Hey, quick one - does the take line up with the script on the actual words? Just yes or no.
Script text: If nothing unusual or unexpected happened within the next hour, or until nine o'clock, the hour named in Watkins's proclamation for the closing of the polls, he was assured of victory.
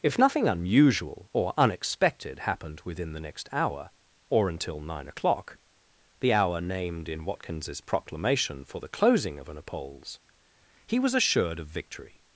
no